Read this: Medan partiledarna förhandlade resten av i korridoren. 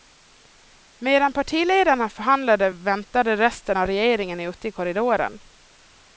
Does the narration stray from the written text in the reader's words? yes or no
yes